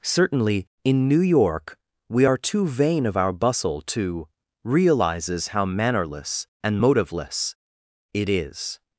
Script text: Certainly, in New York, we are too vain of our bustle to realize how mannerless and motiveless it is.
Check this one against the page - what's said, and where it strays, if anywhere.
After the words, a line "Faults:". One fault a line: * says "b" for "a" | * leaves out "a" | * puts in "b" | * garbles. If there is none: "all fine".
Certainly, in New York, we are too vain of our bustle to realizes how mannerless and motiveless it is.
Faults:
* says "realizes" for "realize"